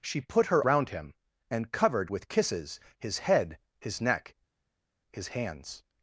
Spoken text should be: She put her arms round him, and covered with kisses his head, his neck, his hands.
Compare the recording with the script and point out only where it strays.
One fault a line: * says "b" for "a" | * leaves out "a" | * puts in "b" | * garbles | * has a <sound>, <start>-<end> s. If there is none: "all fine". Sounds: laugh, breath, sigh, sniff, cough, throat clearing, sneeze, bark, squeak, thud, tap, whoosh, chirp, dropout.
* leaves out "arms"